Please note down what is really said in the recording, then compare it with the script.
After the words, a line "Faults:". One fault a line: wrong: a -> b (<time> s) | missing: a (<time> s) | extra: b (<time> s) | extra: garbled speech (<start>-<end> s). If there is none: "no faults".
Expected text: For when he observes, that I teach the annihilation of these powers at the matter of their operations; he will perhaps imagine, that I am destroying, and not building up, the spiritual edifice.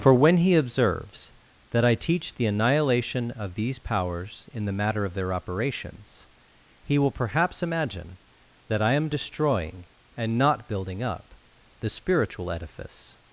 For when he observes, that I teach the annihilation of these powers in the matter of their operations; he will perhaps imagine, that I am destroying, and not building up, the spiritual edifice.
Faults:
wrong: at -> in (4.5 s)